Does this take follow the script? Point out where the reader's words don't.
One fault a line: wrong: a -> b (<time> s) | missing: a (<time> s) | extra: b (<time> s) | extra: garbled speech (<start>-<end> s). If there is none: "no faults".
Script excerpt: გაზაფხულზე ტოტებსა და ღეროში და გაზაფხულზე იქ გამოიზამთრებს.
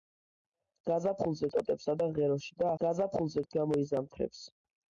no faults